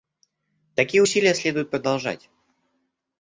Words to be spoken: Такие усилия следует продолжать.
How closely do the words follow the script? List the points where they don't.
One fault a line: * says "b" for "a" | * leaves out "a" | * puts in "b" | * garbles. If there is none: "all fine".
all fine